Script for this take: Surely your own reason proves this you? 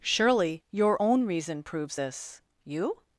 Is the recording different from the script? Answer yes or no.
no